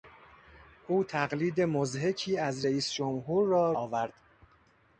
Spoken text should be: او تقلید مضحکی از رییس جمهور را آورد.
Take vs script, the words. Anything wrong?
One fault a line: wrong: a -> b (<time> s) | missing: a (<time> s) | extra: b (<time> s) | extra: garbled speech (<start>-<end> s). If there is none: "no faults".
no faults